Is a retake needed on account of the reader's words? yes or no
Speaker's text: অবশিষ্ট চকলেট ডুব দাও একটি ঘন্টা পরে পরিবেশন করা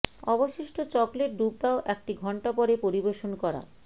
no